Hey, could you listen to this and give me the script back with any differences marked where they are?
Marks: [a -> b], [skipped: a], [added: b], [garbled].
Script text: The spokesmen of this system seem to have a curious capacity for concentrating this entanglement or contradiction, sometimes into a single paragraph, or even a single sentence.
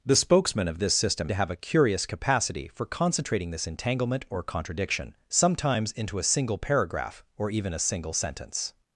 The spokesmen of this system [skipped: seem] to have a curious capacity for concentrating this entanglement or contradiction, sometimes into a single paragraph, or even a single sentence.